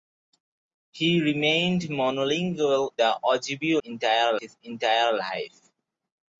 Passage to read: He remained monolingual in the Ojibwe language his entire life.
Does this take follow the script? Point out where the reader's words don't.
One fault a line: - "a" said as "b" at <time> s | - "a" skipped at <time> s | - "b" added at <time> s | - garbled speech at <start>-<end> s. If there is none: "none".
- "in" skipped at 2.9 s
- "language" said as "entire" at 3.8 s